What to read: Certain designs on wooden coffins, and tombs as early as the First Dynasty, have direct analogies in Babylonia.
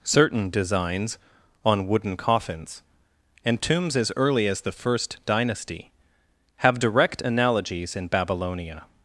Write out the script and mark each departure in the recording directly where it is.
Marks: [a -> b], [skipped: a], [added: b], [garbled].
Certain designs on wooden coffins, and tombs as early as the First Dynasty, have direct analogies in Babylonia.